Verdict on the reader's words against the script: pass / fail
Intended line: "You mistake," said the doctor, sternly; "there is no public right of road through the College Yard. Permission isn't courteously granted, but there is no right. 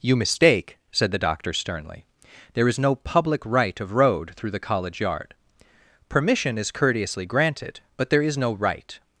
fail